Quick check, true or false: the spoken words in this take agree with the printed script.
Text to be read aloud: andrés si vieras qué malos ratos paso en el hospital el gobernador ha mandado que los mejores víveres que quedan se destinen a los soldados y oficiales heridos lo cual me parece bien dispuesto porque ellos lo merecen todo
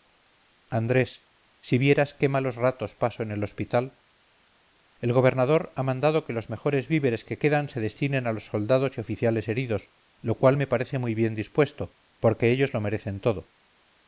false